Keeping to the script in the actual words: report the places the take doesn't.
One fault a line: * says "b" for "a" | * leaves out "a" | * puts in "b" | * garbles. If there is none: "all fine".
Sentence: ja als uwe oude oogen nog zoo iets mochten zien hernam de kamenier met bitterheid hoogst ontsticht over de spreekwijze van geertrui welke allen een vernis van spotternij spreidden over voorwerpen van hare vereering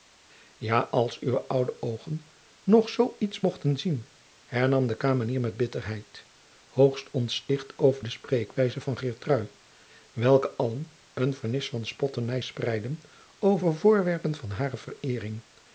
all fine